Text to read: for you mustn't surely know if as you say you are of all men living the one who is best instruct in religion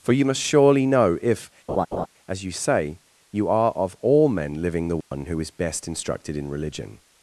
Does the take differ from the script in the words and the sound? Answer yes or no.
yes